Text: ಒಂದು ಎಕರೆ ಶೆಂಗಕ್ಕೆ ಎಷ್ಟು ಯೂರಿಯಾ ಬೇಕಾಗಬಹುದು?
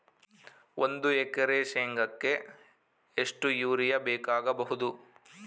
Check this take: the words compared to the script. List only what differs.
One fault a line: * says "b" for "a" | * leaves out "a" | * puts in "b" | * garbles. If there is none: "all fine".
all fine